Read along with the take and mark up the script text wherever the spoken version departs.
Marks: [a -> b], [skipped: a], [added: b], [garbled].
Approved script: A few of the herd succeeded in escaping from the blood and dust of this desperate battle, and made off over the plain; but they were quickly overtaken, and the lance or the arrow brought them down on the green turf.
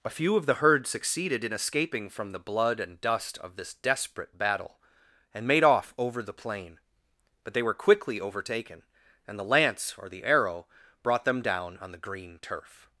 A few of the herd succeeded in escaping from the blood and dust of this desperate battle, and made off over the plain; but they were quickly overtaken, and the lance or the arrow brought them down on the green turf.